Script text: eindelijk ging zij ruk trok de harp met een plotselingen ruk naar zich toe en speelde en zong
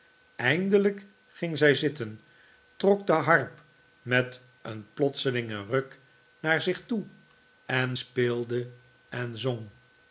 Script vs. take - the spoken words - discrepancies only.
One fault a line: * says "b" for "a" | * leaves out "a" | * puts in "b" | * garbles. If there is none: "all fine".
* says "zitten" for "ruk"